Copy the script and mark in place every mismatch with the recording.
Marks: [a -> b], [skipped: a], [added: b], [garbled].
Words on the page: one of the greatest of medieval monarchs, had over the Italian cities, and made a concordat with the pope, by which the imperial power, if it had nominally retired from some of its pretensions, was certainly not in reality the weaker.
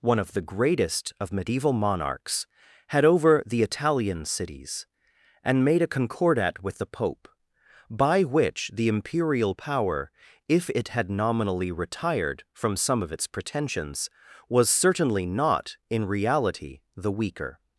one of the greatest of medieval monarchs, had over the Italian cities, and made a concordat with the pope, by which the imperial power, if it had nominally retired from some of its pretensions, was certainly not in reality the weaker.